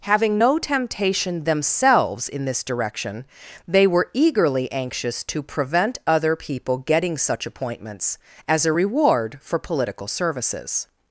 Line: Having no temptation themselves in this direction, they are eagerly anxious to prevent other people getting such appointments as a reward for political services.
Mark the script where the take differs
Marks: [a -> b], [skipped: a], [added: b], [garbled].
Having no temptation themselves in this direction, they [are -> were] eagerly anxious to prevent other people getting such appointments as a reward for political services.